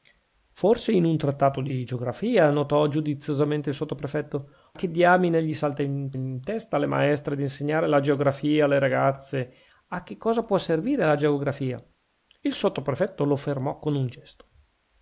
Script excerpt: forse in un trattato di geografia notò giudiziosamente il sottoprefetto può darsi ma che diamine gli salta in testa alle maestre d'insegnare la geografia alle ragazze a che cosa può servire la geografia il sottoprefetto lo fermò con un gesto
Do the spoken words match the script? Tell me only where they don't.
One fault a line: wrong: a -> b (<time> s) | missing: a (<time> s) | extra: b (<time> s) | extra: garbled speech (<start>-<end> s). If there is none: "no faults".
missing: può darsi ma (4.5 s)
extra: in (6.1 s)